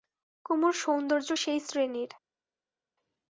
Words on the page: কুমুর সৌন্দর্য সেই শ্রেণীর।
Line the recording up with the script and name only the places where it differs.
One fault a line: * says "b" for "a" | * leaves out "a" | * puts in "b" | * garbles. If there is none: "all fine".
all fine